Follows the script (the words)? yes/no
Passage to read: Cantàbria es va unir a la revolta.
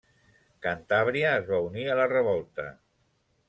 yes